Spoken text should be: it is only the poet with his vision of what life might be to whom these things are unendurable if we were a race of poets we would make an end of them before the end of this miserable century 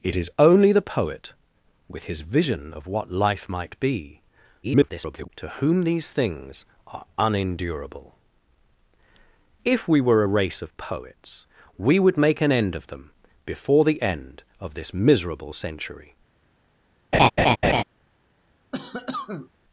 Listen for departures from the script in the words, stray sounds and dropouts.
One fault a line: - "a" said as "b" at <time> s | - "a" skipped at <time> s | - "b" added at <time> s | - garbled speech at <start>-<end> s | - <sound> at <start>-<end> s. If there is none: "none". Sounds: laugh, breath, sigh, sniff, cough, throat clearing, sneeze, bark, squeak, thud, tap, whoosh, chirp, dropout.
- garbled speech at 4.6-5.3 s
- laugh at 17.1-17.8 s
- cough at 18.7-19.5 s